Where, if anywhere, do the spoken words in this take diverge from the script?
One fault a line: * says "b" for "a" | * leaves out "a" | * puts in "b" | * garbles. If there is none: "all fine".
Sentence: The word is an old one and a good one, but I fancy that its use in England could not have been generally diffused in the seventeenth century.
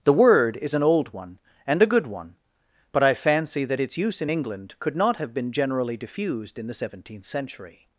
all fine